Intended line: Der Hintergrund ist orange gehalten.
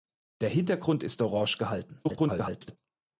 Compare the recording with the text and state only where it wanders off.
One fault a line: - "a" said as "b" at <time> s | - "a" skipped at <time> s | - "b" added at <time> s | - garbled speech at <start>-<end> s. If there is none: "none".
- garbled speech at 2.0-2.8 s